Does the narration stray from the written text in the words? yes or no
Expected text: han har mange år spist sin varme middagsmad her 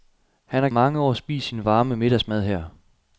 no